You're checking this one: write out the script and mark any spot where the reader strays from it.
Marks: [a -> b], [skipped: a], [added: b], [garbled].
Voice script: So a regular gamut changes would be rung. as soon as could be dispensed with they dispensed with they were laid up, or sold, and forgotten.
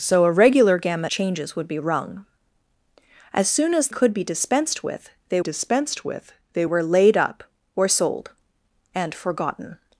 So a regular gamut changes would be rung. as soon as could be dispensed with they dispensed with they were laid up, or sold, and forgotten.